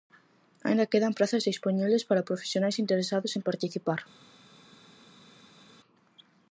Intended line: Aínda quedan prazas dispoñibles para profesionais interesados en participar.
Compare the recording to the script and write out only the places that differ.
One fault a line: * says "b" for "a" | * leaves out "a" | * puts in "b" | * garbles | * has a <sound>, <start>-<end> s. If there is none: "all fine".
all fine